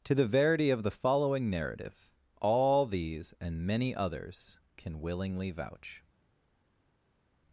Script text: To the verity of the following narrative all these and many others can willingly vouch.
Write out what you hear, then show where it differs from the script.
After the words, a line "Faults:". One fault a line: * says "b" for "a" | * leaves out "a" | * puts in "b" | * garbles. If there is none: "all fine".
To the verity of the following narrative all these and many others can willingly vouch.
Faults:
all fine